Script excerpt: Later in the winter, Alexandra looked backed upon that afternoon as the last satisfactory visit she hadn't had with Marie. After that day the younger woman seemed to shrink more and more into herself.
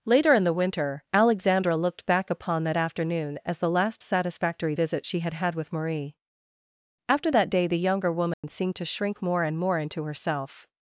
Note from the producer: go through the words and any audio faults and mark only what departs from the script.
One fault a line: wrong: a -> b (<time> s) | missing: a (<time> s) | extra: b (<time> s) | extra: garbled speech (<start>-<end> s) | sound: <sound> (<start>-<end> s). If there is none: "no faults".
wrong: backed -> back (2.1 s)
wrong: hadn't -> had (5.2 s)
sound: dropout (8.3-8.4 s)